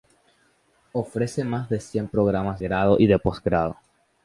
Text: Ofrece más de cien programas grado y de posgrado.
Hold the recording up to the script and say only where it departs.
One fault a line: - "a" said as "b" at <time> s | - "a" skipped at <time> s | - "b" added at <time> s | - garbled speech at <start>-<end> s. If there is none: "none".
none